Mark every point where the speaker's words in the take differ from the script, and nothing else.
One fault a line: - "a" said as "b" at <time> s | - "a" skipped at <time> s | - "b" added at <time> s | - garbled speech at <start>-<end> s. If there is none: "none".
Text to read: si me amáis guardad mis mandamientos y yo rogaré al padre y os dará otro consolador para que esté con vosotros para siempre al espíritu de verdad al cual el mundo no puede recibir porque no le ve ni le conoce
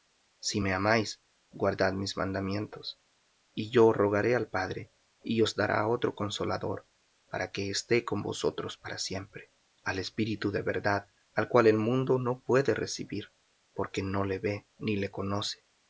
none